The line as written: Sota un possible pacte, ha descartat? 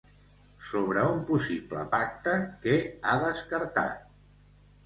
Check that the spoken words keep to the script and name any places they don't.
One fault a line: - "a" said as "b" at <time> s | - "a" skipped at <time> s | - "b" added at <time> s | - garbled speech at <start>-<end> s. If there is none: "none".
- "Sota" said as "Sobre" at 0.7 s
- "què" added at 2.7 s